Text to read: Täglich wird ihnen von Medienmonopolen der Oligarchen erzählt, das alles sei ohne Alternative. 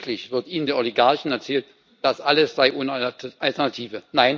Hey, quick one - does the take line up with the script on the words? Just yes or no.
no